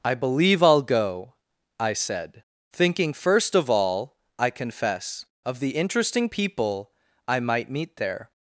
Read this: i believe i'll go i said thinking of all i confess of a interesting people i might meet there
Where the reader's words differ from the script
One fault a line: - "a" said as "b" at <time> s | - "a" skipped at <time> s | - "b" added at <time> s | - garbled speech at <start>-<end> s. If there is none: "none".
- "first" added at 3.1 s
- "a" said as "the" at 5.6 s